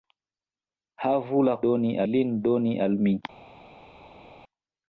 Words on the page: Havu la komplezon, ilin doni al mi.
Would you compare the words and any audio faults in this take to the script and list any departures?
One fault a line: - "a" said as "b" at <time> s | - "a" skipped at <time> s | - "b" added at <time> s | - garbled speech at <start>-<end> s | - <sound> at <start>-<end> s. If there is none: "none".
- "komplezon" said as "doni" at 1.7 s